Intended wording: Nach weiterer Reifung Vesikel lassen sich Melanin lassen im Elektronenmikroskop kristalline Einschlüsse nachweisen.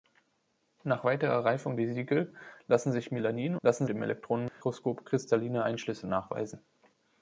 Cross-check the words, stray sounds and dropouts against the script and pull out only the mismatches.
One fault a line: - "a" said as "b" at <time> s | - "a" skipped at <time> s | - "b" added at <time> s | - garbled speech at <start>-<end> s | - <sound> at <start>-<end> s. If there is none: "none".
- dropout at 4.5-4.6 s